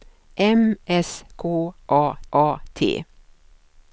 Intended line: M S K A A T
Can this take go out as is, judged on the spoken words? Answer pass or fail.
pass